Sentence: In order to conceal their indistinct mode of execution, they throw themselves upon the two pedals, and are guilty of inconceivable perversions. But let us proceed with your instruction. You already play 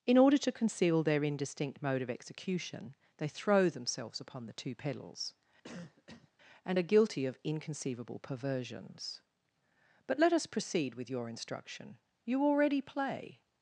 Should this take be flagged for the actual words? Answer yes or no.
no